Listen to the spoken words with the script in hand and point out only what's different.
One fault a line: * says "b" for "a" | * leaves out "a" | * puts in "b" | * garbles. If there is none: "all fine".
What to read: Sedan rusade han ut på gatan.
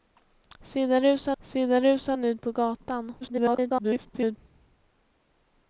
* puts in "sedan rusade"
* garbles